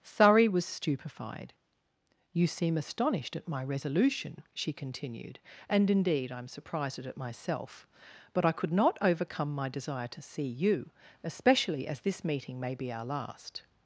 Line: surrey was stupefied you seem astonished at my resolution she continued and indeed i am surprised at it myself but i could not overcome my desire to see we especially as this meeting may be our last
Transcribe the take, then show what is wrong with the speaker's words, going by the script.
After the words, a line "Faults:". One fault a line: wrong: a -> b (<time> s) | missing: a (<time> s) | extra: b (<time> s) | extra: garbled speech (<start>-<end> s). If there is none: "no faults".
surrey was stupefied you seem astonished at my resolution she continued and indeed i am surprised at it myself but i could not overcome my desire to see you especially as this meeting may be our last
Faults:
wrong: we -> you (10.5 s)